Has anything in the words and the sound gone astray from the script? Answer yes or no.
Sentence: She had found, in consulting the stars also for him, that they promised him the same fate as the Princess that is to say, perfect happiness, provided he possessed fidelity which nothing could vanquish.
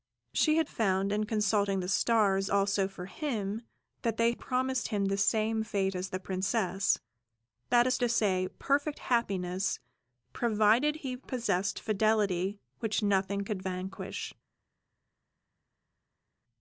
no